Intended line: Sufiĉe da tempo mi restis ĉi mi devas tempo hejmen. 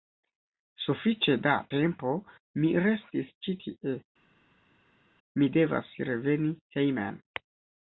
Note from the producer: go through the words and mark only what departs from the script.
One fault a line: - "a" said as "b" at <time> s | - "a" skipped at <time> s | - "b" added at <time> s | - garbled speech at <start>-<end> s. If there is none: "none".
- "tie" added at 3.6 s
- "tempo" said as "reveni" at 6.1 s